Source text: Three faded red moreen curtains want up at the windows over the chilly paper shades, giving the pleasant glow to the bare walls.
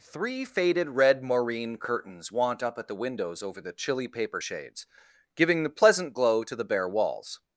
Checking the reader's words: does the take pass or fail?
pass